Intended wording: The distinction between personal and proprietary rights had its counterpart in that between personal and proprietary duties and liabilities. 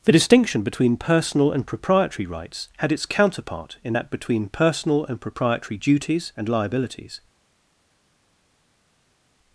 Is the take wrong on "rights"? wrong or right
right